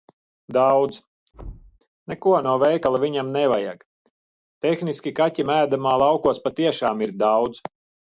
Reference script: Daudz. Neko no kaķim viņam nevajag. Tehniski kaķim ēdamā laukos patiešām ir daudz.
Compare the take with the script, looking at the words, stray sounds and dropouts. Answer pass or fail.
fail